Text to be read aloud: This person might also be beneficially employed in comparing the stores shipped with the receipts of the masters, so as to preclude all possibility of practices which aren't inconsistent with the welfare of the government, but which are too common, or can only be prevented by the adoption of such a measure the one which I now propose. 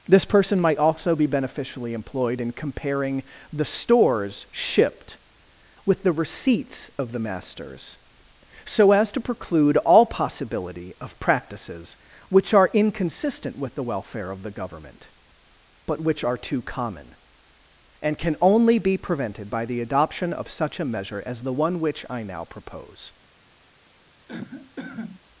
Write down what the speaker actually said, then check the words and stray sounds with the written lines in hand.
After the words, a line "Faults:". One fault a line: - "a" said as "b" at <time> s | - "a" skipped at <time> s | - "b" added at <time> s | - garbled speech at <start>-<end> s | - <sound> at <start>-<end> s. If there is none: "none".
This person might also be beneficially employed in comparing the stores shipped with the receipts of the masters, so as to preclude all possibility of practices which are inconsistent with the welfare of the government, but which are too common, and can only be prevented by the adoption of such a measure as the one which I now propose.
Faults:
- "aren't" said as "are" at 12.5 s
- "or" said as "and" at 18.0 s
- "as" added at 21.3 s
- cough at 24.3-25.2 s